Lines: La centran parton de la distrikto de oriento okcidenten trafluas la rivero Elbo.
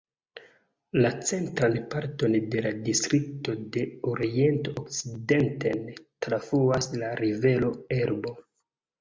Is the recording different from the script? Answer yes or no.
no